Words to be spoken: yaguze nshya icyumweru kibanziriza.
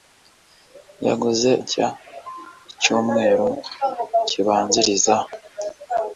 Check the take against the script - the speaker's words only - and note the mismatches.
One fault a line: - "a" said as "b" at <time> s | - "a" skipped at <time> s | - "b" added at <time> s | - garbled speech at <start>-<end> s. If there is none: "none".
none